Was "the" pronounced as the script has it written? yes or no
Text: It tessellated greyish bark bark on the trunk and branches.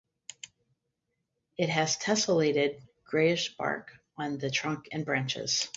yes